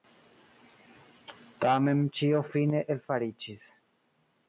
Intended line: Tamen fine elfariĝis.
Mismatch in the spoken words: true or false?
true